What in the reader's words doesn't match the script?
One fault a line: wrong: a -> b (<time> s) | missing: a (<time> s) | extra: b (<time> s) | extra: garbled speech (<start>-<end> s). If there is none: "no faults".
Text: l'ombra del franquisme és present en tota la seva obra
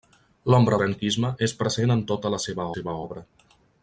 missing: del (0.8 s)
extra: seva (2.7 s)